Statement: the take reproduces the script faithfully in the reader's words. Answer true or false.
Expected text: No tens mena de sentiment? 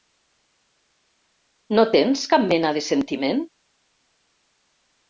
false